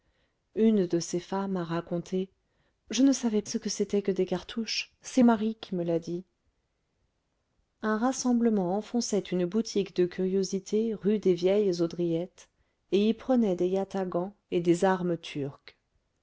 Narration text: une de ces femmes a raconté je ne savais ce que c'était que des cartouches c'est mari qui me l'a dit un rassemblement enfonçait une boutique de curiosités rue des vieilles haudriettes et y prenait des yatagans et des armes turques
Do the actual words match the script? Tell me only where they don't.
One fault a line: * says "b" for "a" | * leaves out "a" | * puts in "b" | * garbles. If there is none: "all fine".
all fine